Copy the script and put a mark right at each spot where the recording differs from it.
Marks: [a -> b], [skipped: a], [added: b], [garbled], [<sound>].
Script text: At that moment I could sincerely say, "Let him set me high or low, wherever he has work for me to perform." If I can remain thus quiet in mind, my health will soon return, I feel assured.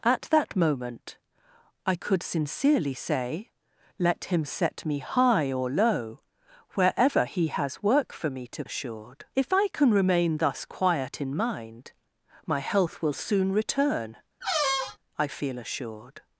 At that moment I could sincerely say, "Let him set me high or low, wherever he has work for me to [perform." -> assured] If I can remain thus quiet in mind, my health will soon return, [squeak] I feel assured.